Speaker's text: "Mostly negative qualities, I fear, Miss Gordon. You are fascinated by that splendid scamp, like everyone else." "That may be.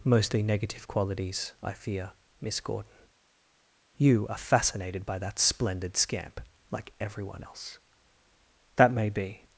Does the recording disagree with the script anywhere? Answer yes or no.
no